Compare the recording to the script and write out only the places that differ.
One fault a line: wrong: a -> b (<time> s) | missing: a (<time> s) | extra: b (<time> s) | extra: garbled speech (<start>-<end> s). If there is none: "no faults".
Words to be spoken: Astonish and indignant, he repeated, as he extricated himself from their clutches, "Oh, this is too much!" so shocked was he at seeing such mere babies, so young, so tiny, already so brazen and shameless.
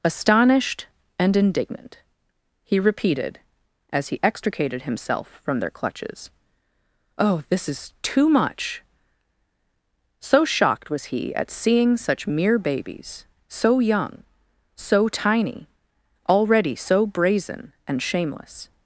wrong: Astonish -> Astonished (0.0 s)